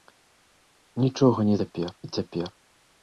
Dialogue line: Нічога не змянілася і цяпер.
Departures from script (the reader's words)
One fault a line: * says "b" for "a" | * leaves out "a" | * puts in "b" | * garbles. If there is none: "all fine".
* says "цяпер" for "змянілася"